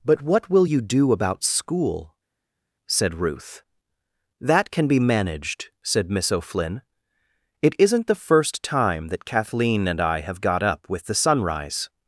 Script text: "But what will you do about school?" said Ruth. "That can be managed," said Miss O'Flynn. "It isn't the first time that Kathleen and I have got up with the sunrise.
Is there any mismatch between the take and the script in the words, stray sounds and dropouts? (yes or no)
no